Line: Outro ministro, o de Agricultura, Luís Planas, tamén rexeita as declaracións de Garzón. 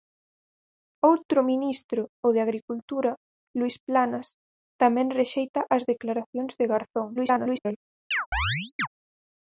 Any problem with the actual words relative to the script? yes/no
yes